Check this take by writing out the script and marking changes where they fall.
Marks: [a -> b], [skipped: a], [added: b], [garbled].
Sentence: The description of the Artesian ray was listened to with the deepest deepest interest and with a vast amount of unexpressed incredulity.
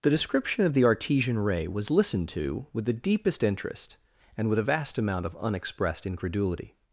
The description of the Artesian ray was listened to with the deepest [skipped: deepest] interest and with a vast amount of unexpressed incredulity.